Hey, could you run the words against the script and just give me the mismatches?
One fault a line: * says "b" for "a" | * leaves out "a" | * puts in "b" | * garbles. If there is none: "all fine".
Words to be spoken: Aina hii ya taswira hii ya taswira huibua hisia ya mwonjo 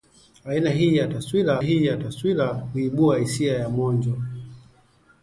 all fine